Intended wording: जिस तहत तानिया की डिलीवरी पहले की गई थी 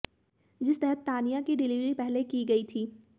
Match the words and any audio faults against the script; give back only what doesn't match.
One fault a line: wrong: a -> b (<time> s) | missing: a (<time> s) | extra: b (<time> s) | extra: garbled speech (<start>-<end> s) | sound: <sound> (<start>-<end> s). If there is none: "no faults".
no faults